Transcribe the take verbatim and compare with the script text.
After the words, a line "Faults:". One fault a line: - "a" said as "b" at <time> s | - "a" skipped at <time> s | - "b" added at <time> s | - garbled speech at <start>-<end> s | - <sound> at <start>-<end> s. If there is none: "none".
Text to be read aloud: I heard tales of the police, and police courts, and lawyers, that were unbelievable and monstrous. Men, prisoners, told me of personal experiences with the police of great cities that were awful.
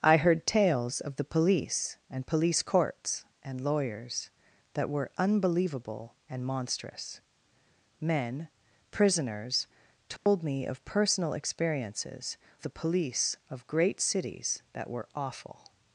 I heard tales of the police, and police courts, and lawyers, that were unbelievable and monstrous. Men, prisoners, told me of personal experiences the police of great cities that were awful.
Faults:
- dropout at 10.2-10.3 s
- "with" skipped at 12.3 s